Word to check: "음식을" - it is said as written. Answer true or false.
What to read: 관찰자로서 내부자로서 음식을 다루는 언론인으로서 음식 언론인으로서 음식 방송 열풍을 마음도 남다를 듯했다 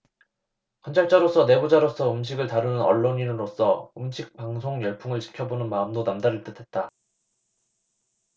true